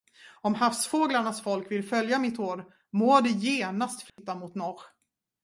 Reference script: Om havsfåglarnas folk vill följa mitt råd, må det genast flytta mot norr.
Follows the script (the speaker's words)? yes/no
yes